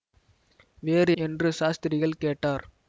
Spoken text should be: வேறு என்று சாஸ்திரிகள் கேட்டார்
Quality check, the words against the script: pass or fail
pass